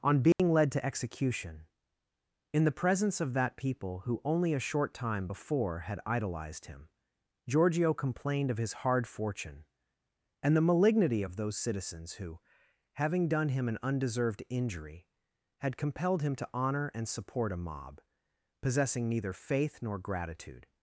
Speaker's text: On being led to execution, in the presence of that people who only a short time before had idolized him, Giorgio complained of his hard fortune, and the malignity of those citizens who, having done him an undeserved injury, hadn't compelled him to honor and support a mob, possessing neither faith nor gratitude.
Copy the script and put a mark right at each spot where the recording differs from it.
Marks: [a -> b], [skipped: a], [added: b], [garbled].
On being led to execution, in the presence of that people who only a short time before had idolized him, Giorgio complained of his hard fortune, and the malignity of those citizens who, having done him an undeserved injury, [hadn't -> had] compelled him to honor and support a mob, possessing neither faith nor gratitude.